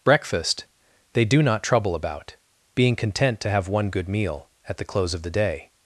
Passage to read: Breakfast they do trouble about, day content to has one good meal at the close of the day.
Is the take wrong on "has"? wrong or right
wrong